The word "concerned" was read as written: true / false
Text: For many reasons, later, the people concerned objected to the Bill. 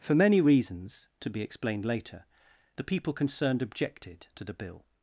true